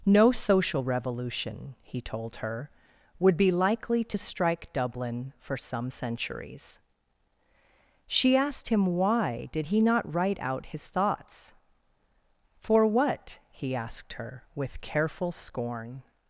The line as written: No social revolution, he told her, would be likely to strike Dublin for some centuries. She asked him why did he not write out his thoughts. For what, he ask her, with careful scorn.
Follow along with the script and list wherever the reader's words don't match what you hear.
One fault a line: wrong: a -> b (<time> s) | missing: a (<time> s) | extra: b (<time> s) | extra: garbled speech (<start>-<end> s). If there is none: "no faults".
wrong: ask -> asked (13.7 s)